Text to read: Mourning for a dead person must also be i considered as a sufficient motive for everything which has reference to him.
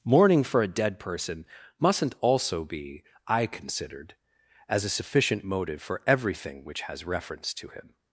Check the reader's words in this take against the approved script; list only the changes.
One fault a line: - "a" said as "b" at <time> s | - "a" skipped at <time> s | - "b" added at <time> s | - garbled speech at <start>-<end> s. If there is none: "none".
- "must" said as "mustn't" at 1.8 s